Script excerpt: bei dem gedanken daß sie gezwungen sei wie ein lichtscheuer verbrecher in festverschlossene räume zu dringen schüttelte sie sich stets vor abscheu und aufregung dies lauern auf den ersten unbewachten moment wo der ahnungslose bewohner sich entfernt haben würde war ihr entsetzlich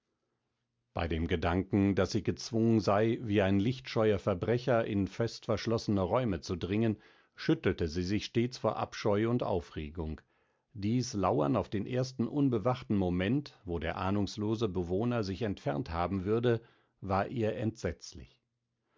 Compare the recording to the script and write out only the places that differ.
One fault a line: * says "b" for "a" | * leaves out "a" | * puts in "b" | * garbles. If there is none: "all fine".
all fine